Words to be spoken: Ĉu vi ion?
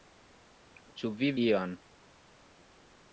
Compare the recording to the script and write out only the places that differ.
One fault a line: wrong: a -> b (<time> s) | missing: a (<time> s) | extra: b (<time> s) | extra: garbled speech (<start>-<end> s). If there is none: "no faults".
no faults